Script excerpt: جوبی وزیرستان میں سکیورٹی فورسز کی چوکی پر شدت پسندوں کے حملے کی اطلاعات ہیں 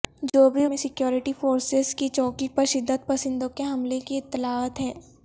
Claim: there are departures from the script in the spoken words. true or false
true